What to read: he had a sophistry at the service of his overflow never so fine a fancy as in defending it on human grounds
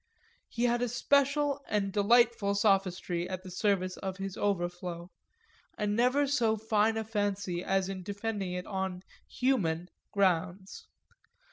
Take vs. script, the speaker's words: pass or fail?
fail